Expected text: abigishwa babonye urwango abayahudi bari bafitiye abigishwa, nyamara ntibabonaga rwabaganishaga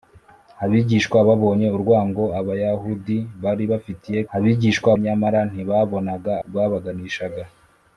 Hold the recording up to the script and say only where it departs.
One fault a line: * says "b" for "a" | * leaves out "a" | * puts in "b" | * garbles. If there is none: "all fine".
all fine